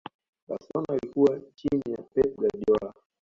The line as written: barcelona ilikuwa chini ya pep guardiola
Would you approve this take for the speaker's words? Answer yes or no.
yes